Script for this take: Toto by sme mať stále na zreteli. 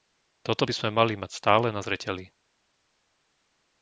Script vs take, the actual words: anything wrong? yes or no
yes